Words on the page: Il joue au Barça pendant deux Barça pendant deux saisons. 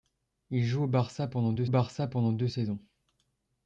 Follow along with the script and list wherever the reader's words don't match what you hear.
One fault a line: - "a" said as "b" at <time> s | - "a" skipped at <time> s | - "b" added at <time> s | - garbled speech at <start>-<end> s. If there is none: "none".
none